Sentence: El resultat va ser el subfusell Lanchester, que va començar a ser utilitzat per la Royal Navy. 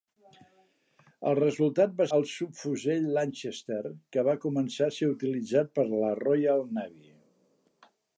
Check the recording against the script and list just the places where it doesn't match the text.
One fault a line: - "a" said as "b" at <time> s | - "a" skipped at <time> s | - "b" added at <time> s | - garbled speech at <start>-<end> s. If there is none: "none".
- "ser" skipped at 2.1 s